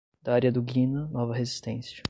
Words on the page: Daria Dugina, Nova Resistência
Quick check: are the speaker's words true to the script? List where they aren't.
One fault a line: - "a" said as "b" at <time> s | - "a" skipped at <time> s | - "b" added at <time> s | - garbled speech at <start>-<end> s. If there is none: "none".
none